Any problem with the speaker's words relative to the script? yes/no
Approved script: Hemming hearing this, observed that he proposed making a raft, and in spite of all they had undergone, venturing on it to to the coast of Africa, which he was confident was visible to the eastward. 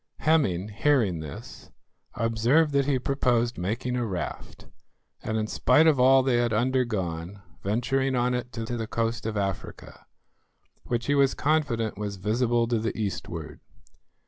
no